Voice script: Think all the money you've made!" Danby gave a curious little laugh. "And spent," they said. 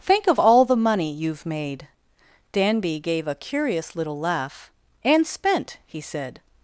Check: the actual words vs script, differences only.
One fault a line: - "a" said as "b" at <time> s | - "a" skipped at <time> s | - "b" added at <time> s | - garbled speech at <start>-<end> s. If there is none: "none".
- "of" added at 0.2 s
- "they" said as "he" at 5.9 s